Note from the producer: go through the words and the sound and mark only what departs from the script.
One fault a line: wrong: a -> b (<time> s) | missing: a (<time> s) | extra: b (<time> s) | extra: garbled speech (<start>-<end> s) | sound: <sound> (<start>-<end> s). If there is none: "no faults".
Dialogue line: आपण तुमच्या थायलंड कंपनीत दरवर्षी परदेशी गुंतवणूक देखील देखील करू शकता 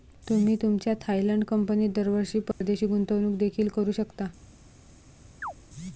wrong: आपण -> तुम्ही (0.3 s)
sound: dropout (2.5-2.6 s)
missing: देखील (3.7 s)
sound: chirp (5.4-5.5 s)